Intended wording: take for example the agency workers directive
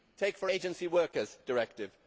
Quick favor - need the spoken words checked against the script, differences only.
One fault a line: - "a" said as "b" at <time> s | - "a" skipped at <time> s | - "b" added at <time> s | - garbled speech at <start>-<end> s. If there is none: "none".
- "example the" skipped at 0.5 s